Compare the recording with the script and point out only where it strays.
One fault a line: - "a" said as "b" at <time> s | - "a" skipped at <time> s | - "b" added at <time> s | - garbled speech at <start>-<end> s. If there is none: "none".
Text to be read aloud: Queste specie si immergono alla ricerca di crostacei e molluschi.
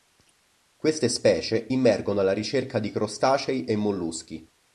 - "si" skipped at 1.7 s